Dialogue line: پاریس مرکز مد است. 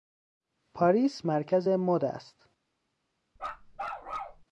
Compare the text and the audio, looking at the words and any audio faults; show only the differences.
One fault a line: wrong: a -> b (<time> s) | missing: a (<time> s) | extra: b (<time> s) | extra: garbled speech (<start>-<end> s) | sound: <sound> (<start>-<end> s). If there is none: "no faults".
sound: bark (3.4-4.4 s)